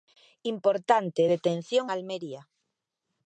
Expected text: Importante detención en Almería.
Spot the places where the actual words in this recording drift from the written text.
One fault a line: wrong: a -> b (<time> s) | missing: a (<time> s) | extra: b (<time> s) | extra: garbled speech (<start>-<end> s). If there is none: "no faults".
missing: en (1.9 s)